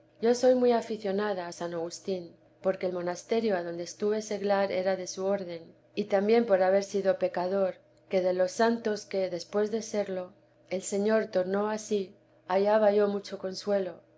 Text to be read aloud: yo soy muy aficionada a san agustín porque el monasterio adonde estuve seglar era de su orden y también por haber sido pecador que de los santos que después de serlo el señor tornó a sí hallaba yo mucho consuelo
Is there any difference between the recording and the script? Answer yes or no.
no